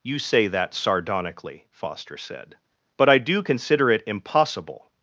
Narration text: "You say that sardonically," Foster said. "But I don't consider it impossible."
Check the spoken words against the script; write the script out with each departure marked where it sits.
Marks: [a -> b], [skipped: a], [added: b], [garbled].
"You say that sardonically," Foster said. "But I [don't -> do] consider it impossible."